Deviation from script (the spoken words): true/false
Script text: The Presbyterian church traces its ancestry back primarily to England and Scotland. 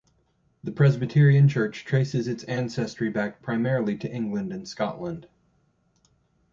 false